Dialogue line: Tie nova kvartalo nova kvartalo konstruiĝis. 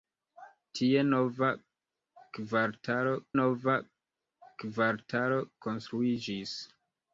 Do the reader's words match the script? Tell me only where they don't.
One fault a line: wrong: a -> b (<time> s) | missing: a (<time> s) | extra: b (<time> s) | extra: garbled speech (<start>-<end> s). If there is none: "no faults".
no faults